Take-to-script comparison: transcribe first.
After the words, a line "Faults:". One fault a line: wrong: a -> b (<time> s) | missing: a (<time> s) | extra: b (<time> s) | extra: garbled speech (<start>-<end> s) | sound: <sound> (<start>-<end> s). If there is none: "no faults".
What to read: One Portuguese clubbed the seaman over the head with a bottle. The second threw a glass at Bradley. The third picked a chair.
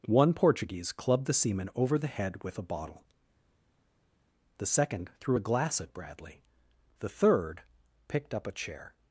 One Portuguese clubbed the seaman over the head with a bottle. The second threw a glass at Bradley. The third picked up a chair.
Faults:
extra: up (8.4 s)